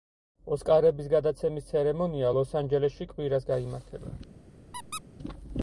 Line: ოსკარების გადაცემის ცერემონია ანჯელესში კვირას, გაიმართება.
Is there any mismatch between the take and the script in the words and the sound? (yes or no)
yes